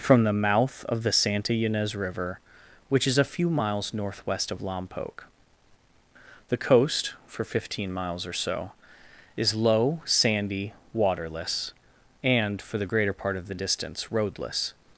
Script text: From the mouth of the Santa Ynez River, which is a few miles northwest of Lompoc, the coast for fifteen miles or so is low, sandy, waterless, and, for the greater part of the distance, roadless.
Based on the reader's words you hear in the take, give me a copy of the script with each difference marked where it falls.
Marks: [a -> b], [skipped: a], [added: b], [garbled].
From the mouth of the Santa Ynez River, which is a few miles northwest of Lompoc, the coast for fifteen miles or so is low, sandy, waterless, and, for the greater part of the distance, roadless.